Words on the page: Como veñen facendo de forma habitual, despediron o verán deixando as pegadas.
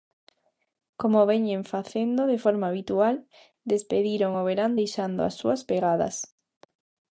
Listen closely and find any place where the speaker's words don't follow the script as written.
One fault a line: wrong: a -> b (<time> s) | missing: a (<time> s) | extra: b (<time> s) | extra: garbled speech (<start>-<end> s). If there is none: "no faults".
extra: súas (5.4 s)